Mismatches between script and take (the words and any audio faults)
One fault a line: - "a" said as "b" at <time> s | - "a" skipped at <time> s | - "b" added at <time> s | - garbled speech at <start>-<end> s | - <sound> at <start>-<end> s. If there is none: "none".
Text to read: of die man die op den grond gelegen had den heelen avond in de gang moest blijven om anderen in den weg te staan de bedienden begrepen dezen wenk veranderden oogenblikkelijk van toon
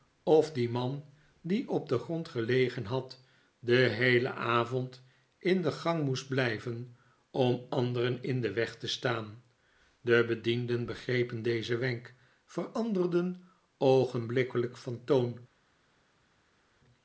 none